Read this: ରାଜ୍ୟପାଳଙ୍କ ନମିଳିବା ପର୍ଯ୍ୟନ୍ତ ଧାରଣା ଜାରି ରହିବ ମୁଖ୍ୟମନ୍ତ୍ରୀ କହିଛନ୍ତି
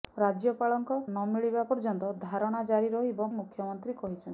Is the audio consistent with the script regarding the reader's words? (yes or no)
yes